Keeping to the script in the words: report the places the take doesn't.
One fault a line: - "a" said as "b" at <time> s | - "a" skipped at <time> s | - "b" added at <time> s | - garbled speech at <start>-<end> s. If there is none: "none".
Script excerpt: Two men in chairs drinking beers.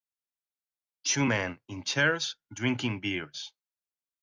none